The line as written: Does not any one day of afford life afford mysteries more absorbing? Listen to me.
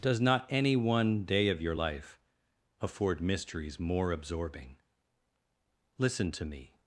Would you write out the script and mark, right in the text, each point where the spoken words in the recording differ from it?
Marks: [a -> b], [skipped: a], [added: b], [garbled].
Does not any one day of [afford -> your] life afford mysteries more absorbing? Listen to me.